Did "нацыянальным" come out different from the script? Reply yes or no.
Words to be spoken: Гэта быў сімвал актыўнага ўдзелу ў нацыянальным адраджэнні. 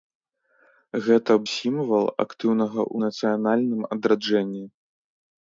no